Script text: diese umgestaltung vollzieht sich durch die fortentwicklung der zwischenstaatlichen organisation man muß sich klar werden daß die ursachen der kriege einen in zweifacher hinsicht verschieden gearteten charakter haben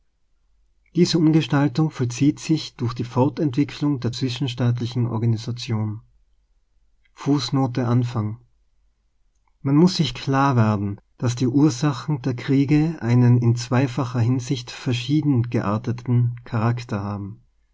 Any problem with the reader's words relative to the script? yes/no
no